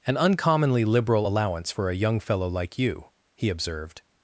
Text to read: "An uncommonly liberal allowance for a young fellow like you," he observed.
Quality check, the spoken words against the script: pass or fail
pass